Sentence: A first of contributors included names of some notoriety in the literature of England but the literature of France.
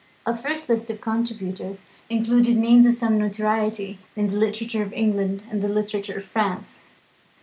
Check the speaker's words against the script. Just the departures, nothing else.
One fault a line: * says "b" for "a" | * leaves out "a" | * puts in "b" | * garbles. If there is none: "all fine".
* puts in "list"
* says "and" for "but"